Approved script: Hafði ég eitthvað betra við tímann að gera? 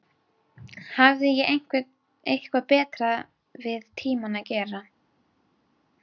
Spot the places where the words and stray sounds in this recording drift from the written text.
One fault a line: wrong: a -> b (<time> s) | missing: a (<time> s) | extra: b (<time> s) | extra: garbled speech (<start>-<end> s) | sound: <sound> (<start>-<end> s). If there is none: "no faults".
no faults